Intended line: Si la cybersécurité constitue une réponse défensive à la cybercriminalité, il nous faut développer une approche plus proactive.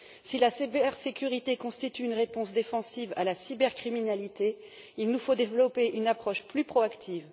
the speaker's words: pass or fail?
pass